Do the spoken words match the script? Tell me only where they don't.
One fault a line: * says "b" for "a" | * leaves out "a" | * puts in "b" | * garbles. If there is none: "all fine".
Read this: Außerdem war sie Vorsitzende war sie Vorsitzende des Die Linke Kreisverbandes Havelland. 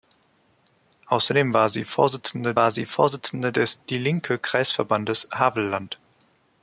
all fine